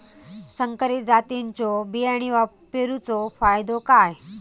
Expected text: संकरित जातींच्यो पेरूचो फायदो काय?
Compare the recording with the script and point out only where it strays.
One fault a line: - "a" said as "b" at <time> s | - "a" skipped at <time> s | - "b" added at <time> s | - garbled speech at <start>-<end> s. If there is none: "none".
- "बियाणी" added at 1.9 s